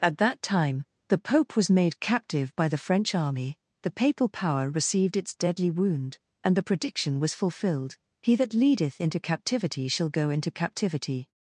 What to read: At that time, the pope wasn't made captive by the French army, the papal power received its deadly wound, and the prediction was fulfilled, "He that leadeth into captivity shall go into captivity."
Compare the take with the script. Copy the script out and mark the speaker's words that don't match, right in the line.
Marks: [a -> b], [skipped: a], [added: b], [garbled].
At that time, the pope [wasn't -> was] made captive by the French army, the papal power received its deadly wound, and the prediction was fulfilled, "He that leadeth into captivity shall go into captivity."